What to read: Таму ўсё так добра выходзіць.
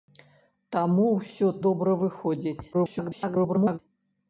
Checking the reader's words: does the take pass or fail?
fail